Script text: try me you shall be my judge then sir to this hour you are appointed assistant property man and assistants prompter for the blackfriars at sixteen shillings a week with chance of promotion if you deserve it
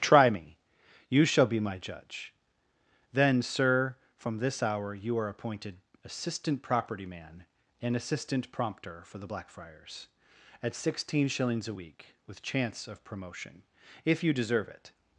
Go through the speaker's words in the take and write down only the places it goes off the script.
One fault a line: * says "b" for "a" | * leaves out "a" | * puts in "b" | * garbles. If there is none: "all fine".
* says "from" for "to"
* says "assistant" for "assistants"